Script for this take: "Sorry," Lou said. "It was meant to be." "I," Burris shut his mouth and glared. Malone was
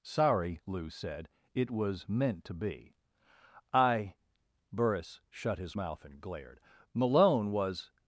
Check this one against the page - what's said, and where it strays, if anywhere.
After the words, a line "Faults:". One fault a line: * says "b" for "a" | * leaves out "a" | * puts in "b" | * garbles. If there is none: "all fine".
"Sorry," Lou said. "It was meant to be." "I," Burris shut his mouth and glared. Malone was
Faults:
all fine